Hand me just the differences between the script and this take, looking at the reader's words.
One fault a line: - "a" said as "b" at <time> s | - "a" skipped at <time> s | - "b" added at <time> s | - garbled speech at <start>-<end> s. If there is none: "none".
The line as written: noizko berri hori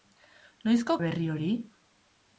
none